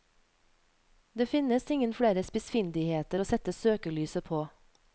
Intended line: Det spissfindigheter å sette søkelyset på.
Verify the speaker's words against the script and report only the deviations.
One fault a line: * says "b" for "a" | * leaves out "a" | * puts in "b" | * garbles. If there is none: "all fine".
* puts in "finnes ingen flere"